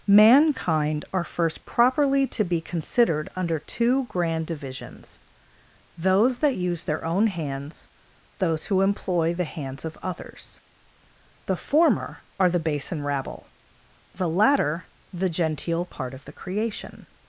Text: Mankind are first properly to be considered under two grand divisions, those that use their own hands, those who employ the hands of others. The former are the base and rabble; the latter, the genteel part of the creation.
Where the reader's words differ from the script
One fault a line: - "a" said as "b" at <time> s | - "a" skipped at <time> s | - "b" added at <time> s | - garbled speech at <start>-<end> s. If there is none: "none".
none